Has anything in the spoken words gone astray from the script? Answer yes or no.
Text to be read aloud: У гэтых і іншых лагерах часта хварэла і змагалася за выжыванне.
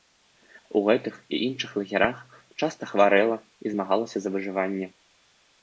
no